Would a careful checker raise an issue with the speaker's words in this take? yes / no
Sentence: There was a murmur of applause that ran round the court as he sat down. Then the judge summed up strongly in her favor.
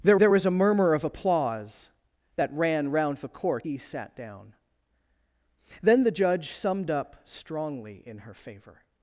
yes